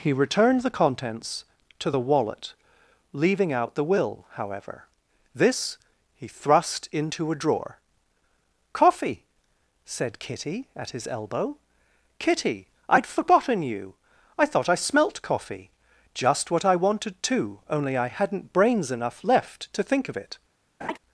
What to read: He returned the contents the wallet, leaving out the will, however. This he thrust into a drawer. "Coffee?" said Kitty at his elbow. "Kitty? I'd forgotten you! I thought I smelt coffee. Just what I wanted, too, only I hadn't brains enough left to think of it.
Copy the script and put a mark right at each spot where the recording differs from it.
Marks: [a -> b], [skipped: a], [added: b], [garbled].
He returned the contents [added: to] the wallet, leaving out the will, however. This he thrust into a drawer. "Coffee?" said Kitty at his elbow. "Kitty? I'd forgotten you! I thought I smelt coffee. Just what I wanted, too, only I hadn't brains enough left to think of it.